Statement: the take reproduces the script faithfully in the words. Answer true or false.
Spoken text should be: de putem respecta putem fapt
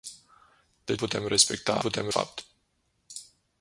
true